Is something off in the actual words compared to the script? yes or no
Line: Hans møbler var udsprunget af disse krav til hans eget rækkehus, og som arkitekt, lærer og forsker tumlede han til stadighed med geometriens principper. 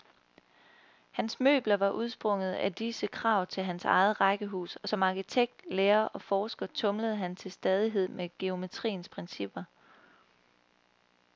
no